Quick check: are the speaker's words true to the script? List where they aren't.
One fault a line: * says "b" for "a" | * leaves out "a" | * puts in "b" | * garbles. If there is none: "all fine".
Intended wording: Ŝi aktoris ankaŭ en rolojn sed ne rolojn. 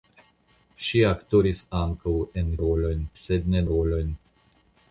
all fine